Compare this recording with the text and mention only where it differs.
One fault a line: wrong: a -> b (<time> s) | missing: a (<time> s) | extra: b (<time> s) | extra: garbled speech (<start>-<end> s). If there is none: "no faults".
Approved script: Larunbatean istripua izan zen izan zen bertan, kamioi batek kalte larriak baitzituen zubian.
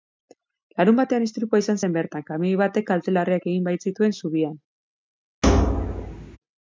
missing: izan zen (2.0 s)
extra: egin (3.5 s)